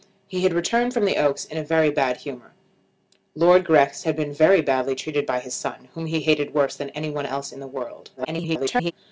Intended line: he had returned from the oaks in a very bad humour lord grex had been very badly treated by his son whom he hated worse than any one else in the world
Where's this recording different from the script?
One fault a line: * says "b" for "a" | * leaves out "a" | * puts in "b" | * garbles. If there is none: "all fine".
* garbles